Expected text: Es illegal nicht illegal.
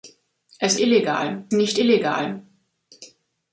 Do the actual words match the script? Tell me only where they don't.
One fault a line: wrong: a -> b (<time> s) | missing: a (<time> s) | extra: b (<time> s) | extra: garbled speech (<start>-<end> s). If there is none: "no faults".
no faults